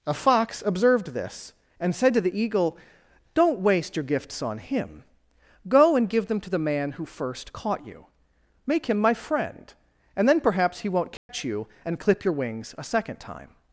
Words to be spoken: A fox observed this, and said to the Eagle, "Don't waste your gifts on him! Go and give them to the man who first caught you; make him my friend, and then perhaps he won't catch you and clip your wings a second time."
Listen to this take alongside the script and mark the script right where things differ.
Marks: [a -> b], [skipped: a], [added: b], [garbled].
A fox observed this, and said to the Eagle, "Don't waste your gifts on him! Go and give them to the man who first caught you; make him my friend, and then perhaps he won't catch you and clip your wings a second time."